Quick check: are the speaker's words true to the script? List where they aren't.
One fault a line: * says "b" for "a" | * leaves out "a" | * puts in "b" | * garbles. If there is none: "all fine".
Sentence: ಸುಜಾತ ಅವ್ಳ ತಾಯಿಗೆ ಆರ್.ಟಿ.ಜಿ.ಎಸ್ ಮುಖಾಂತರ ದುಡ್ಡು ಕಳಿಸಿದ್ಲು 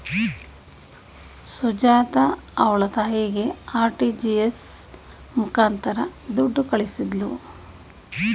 all fine